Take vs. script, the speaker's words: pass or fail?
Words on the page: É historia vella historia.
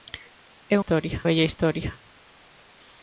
pass